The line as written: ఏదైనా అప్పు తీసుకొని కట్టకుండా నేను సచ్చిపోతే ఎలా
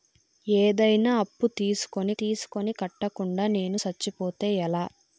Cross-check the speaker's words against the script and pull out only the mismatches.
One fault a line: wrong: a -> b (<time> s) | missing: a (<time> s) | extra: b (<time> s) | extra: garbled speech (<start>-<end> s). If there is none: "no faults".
extra: తీసుకొని (2.2 s)